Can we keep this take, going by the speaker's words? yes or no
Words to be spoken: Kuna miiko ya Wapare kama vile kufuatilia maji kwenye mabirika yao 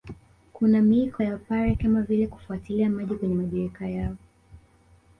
yes